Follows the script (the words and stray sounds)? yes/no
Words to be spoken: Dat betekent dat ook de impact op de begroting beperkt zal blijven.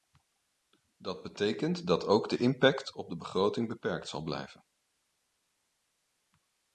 yes